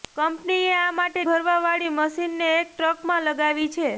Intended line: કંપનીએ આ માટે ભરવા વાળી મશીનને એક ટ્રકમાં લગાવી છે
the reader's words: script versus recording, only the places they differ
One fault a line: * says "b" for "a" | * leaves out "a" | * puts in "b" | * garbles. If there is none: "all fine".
all fine